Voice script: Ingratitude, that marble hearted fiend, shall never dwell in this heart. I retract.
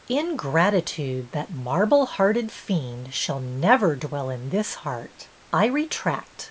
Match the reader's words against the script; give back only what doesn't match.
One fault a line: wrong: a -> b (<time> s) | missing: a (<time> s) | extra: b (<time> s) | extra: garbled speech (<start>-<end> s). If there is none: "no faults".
no faults